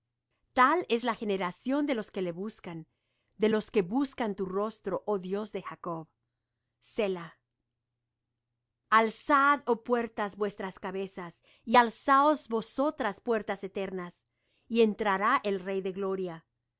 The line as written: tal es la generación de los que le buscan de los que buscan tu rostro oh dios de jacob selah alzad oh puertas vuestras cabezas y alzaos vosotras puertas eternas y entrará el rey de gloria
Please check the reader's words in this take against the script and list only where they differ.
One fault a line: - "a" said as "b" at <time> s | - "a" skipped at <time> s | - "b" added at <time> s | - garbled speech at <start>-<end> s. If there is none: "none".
none